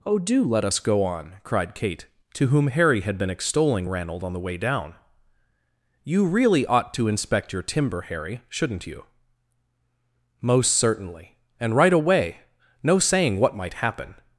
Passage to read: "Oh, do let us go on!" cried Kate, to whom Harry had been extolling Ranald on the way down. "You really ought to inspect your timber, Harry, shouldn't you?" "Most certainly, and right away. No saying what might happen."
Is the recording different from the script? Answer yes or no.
no